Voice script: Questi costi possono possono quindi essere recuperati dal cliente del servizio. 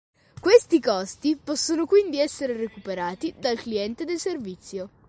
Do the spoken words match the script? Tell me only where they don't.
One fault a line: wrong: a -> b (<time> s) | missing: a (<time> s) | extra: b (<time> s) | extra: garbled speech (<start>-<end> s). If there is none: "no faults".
missing: possono (1.9 s)